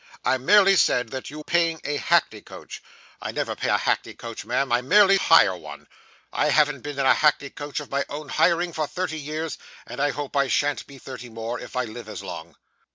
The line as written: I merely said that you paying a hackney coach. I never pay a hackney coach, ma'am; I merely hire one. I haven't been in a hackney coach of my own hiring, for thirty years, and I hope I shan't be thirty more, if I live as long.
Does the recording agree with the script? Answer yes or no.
yes